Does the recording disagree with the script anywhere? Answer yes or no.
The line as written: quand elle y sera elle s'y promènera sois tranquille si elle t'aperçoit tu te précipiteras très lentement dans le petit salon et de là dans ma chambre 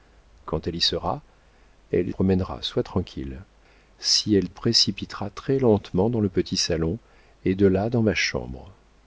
yes